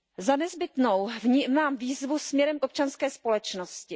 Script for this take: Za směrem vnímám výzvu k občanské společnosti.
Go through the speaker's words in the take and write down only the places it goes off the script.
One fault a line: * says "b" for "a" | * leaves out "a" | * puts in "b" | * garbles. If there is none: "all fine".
* says "nezbytnou" for "směrem"
* puts in "směrem"